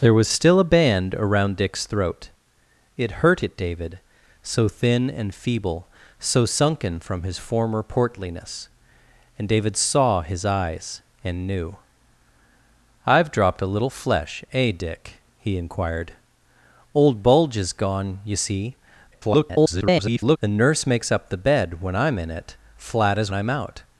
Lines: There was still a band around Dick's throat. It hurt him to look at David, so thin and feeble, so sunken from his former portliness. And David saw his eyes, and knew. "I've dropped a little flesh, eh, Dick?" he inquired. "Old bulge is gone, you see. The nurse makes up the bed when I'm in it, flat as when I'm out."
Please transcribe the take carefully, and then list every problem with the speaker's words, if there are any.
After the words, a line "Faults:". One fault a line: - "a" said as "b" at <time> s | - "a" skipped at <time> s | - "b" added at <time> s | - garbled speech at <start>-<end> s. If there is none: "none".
There was still a band around Dick's throat. It hurt at David, so thin and feeble, so sunken from his former portliness. And David saw his eyes, and knew. "I've dropped a little flesh, eh, Dick?" he inquired. "Old bulge is gone, you see. [garbled] The nurse makes up the bed when I'm in it, flat as I'm out."
Faults:
- "him to look" skipped at 3.4 s
- garbled speech at 19.1-20.4 s
- "when" skipped at 23.3 s